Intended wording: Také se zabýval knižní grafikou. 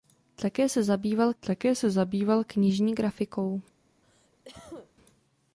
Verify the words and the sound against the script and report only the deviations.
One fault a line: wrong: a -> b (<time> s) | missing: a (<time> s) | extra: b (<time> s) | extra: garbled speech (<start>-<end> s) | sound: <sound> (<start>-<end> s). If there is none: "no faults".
extra: také se zabýval (1.4 s)
sound: cough (4.0-4.9 s)